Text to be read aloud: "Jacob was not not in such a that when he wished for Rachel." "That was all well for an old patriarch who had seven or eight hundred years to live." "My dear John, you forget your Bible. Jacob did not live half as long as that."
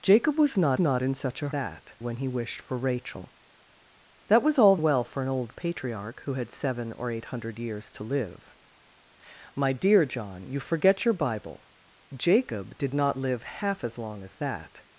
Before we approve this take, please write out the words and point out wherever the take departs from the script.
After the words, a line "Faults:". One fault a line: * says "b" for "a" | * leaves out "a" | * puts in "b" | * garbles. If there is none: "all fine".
"Jacob was not not in such a that when he wished for Rachel." "That was all well for an old patriarch who had seven or eight hundred years to live." "My dear John, you forget your Bible. Jacob did not live half as long as that."
Faults:
all fine